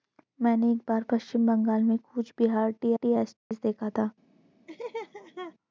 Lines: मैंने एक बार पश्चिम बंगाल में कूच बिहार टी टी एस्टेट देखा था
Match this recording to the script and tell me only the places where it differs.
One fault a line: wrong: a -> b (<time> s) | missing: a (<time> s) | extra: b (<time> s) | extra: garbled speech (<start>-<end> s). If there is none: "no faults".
no faults